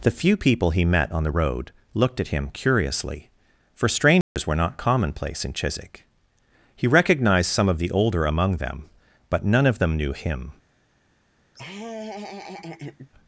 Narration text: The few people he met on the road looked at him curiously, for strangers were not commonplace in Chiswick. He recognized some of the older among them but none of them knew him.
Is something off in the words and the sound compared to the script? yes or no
yes